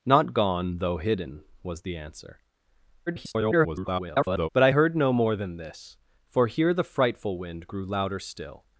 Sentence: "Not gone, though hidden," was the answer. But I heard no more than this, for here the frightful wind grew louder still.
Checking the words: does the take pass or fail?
fail